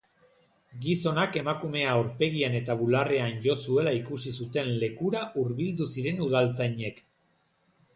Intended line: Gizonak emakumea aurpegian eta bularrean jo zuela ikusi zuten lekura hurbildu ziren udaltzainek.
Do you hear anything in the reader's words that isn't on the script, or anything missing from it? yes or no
no